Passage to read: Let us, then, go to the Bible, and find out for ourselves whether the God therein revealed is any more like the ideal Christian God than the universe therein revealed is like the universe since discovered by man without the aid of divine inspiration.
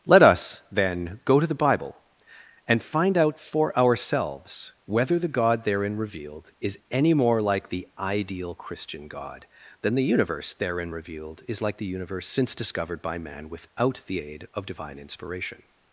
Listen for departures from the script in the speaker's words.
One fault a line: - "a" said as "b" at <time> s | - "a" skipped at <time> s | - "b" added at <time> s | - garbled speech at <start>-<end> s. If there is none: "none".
none